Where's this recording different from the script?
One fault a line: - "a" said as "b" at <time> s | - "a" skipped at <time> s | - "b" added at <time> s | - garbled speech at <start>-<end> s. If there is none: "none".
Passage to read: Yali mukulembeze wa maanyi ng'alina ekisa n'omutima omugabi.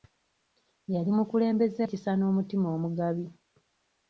- "wa maanyi ng'alina" skipped at 1.8 s